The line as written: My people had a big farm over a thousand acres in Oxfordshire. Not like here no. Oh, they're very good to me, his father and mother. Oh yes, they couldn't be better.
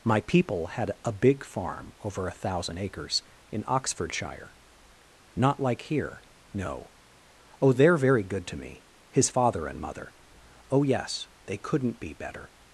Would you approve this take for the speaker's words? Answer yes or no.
yes